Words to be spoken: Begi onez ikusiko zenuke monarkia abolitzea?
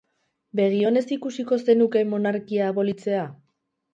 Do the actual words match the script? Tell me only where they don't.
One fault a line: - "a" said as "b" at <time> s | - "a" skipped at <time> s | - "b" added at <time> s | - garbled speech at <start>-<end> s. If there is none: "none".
none